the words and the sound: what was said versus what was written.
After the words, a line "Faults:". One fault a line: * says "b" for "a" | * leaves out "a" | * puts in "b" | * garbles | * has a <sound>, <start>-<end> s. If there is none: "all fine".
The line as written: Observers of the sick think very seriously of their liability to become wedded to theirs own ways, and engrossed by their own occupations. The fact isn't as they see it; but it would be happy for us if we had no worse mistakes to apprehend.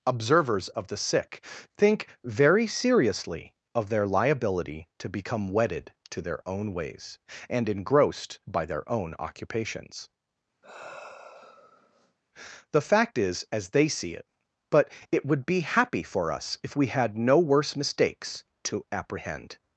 Observers of the sick think very seriously of their liability to become wedded to their own ways, and engrossed by their own occupations. The fact is as they see it; but it would be happy for us if we had no worse mistakes to apprehend.
Faults:
* says "their" for "theirs"
* has a sigh, 10.6-12.2 s
* says "is" for "isn't"